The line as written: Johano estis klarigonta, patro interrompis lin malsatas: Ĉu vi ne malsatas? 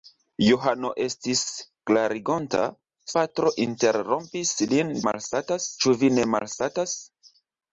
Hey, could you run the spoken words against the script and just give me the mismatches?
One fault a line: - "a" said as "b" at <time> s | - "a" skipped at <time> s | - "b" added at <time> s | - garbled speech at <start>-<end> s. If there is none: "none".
none